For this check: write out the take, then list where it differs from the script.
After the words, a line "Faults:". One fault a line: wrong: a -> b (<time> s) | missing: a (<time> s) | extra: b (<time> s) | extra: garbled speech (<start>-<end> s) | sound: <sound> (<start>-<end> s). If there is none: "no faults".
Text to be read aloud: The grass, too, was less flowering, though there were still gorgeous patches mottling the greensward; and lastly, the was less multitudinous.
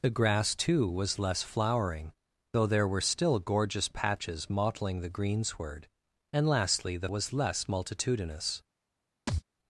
The grass, too, was less flowering, though there were still gorgeous patches mottling the greensward; and lastly, the was less multitudinous.
Faults:
sound: thud (9.3-9.4 s)